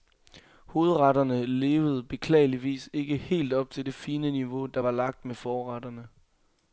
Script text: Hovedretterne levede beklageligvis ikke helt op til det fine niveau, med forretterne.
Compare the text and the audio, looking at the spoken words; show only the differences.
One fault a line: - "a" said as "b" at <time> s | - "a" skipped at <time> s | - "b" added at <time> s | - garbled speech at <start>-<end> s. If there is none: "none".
- "der var lagt" added at 4.7 s